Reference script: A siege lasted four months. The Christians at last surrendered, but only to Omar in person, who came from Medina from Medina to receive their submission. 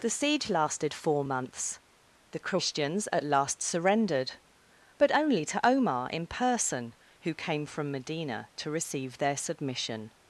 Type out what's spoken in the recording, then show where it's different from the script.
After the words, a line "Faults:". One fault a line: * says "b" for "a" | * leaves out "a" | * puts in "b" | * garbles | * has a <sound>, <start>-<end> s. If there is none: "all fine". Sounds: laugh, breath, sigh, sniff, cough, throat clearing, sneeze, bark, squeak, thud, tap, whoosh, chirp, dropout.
The siege lasted four months. The Christians at last surrendered, but only to Omar in person, who came from Medina to receive their submission.
Faults:
* says "The" for "A"
* leaves out "from Medina"